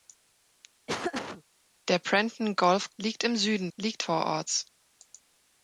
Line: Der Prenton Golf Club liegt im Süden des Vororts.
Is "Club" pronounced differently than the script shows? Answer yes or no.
yes